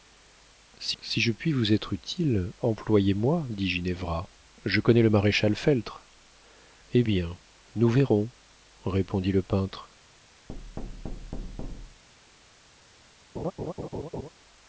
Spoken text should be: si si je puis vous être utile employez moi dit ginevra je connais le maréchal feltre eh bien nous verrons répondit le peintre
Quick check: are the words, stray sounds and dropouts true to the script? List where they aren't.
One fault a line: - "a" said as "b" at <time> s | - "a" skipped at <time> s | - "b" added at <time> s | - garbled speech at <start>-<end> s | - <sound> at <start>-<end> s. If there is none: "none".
- thud at 10.5-12.0 s
- laugh at 13.4-14.3 s